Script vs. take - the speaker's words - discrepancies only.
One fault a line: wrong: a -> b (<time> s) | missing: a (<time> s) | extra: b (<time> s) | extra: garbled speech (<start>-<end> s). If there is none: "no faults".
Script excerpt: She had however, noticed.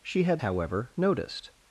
no faults